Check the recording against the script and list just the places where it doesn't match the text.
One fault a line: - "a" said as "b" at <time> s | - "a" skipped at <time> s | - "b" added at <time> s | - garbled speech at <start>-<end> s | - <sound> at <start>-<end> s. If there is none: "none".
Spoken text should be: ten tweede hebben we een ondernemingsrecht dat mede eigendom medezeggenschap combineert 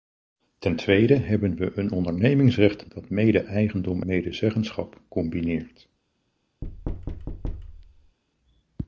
- thud at 6.6-8.2 s